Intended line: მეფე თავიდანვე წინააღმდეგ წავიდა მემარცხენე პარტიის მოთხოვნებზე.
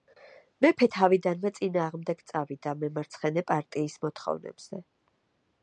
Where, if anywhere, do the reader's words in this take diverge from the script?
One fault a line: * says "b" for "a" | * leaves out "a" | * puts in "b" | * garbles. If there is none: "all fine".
all fine